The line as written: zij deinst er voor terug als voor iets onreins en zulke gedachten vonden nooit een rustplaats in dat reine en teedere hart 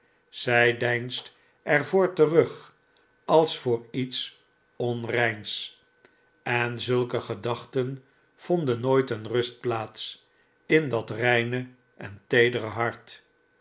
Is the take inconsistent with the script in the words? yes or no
no